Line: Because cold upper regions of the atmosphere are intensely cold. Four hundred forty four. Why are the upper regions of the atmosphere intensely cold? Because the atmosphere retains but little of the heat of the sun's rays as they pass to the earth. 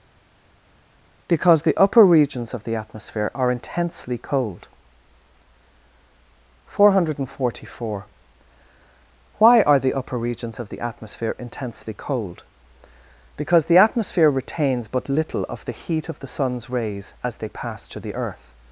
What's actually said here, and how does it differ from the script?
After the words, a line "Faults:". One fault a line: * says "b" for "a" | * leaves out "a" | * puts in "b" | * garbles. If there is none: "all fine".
Because the upper regions of the atmosphere are intensely cold. Four hundred forty four. Why are the upper regions of the atmosphere intensely cold? Because the atmosphere retains but little of the heat of the sun's rays as they pass to the earth.
Faults:
* says "the" for "cold"